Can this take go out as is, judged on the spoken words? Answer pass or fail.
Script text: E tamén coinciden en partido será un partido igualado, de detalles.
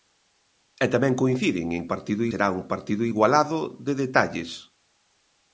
pass